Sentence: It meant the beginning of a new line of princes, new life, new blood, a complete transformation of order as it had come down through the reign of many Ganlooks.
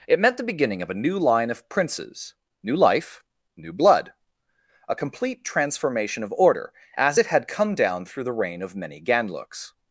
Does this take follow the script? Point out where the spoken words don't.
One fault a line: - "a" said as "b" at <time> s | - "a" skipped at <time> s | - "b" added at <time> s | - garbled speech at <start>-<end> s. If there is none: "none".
none